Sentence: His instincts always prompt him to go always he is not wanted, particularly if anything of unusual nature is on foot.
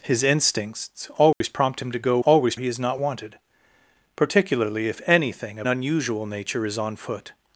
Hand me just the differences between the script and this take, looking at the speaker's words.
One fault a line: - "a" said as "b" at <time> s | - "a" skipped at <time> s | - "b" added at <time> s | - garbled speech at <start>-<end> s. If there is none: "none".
none